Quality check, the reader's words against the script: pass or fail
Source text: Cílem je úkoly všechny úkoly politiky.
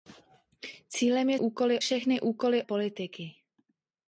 pass